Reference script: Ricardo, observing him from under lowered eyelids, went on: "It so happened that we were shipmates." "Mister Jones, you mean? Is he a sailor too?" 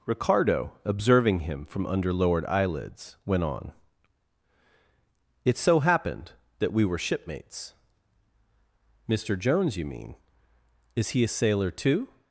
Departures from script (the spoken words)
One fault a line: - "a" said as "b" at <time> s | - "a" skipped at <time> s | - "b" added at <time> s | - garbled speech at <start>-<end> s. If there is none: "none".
none